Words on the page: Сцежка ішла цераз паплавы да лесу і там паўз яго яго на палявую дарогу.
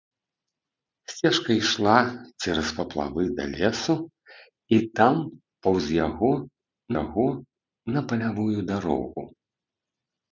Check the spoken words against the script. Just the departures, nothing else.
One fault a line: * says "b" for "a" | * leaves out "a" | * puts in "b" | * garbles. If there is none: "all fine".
all fine